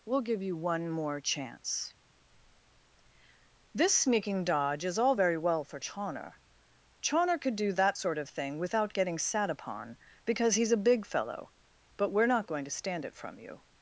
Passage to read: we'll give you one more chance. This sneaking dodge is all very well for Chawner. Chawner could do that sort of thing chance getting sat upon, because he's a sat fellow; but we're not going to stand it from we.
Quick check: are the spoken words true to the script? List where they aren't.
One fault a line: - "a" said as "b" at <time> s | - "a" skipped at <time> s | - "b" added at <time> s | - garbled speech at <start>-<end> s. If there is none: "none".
- "chance" said as "without" at 8.6 s
- "sat" said as "big" at 10.9 s
- "we" said as "you" at 13.4 s